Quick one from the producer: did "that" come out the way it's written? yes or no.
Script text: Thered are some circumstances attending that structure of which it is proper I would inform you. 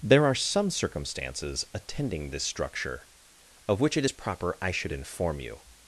no